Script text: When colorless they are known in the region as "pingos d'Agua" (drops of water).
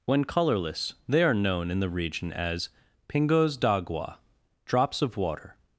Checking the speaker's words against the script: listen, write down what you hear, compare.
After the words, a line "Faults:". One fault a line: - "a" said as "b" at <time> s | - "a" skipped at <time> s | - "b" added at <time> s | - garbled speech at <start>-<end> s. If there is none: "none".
When colorless they are known in the region as "pingos d'Agua" (drops of water).
Faults:
none